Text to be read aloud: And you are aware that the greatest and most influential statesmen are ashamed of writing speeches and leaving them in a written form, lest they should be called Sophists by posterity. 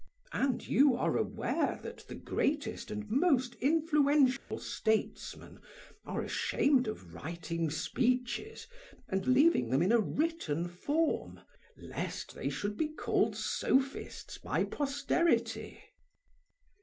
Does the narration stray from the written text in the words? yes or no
no